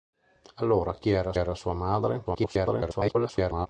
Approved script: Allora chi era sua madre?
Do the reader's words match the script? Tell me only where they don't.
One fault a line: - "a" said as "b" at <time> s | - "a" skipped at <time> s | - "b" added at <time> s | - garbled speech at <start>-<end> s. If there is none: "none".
- "era" added at 1.3 s
- garbled speech at 2.2-3.7 s